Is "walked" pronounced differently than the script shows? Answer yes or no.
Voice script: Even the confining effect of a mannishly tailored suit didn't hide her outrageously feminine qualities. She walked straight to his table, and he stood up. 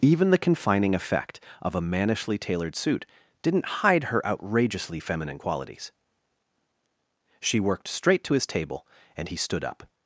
yes